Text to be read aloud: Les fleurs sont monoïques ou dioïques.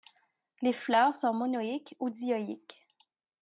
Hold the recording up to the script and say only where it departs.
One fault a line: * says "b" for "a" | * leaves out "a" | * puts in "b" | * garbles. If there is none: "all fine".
all fine